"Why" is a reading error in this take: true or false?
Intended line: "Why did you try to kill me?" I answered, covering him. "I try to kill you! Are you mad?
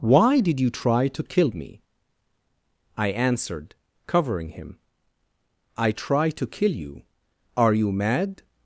false